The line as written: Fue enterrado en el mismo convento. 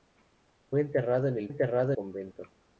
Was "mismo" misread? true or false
true